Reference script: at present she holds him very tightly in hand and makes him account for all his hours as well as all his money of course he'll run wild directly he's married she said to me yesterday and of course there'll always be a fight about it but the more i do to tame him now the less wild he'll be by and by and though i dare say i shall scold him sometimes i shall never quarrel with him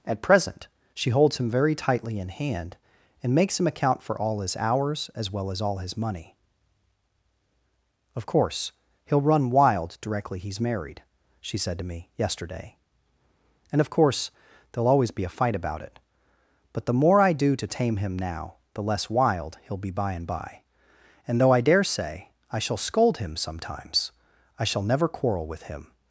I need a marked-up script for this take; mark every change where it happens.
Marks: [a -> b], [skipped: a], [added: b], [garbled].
at present she holds him very tightly in hand and makes him account for all his hours as well as all his money of course he'll run wild directly he's married she said to me yesterday and of course there'll always be a fight about it but the more i do to tame him now the less wild he'll be by and by and though i dare say i shall scold him sometimes i shall never quarrel with him